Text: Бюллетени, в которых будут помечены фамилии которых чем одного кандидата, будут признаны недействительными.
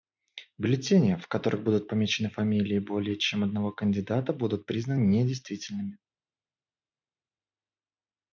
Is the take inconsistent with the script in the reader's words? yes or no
yes